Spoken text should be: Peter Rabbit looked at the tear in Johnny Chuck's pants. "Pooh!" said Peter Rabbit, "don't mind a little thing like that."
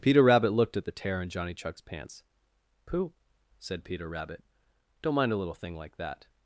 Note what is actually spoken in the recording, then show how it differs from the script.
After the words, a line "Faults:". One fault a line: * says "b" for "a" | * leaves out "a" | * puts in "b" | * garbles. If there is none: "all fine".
Peter Rabbit looked at the tear in Johnny Chuck's pants. "Pooh!" said Peter Rabbit, "don't mind a little thing like that."
Faults:
all fine